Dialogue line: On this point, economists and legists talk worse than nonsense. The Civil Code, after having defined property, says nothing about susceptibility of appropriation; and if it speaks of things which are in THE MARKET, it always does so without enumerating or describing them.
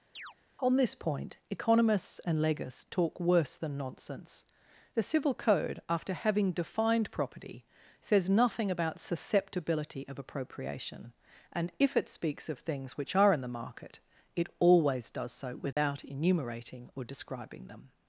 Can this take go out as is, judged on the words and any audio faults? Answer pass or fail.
fail